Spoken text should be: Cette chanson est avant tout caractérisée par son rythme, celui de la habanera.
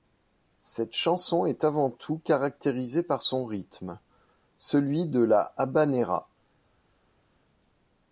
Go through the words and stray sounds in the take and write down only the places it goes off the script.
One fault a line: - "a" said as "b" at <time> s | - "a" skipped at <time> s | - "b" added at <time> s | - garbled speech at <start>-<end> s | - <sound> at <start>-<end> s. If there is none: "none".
none